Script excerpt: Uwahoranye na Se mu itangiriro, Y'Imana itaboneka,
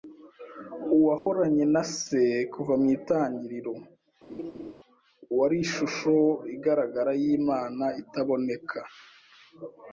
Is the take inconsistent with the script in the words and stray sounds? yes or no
yes